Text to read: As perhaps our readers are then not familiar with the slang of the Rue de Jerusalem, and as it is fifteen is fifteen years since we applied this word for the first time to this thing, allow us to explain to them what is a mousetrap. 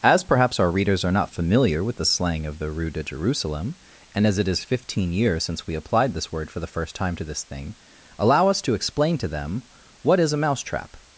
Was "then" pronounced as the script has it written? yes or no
no